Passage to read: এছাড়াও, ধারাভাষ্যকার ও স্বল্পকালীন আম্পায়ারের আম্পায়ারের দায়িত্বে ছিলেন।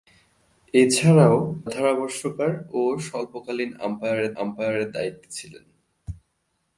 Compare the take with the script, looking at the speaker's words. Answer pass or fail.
pass